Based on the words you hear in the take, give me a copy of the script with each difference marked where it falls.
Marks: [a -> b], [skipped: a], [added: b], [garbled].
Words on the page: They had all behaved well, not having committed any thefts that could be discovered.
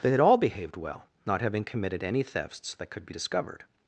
They had all behaved well, not having committed any thefts that could be discovered.